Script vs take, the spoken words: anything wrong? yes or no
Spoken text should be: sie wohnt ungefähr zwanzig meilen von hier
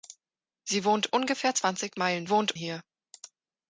yes